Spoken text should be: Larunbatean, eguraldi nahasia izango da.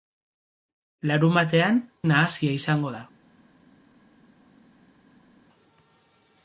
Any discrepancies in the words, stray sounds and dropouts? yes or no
yes